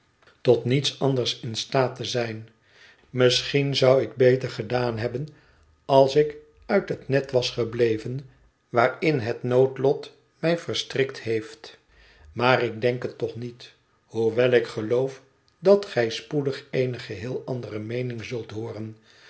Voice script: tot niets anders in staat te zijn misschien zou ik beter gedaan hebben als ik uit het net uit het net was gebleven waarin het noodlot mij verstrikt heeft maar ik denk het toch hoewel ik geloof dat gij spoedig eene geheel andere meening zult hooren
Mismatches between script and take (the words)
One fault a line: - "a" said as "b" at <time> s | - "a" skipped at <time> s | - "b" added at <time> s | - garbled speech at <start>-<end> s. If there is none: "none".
- "uit het net" skipped at 7.3 s
- "niet" added at 13.3 s